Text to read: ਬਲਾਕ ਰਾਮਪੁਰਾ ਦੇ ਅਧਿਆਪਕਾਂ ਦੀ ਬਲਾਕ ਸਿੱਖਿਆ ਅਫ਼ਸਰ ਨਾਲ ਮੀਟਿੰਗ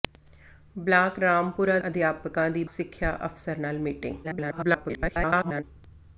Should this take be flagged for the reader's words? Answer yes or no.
yes